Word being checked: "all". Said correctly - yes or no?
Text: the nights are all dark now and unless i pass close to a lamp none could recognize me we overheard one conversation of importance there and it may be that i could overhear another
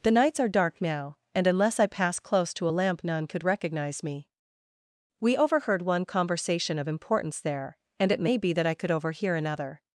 no